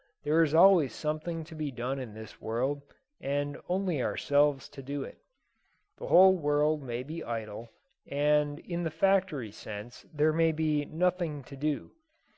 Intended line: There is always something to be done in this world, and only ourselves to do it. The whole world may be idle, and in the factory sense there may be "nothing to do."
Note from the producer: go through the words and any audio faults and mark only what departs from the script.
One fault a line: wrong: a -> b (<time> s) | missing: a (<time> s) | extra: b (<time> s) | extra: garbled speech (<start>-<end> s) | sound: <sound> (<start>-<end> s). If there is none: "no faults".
no faults